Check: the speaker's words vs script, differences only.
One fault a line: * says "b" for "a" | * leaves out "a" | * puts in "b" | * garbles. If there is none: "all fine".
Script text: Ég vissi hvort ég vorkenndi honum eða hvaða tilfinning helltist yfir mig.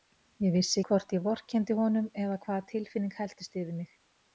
all fine